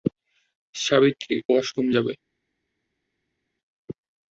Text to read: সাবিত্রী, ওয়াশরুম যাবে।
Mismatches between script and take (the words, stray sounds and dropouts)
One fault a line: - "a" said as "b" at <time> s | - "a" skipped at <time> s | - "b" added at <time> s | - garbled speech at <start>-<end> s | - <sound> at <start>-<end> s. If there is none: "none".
none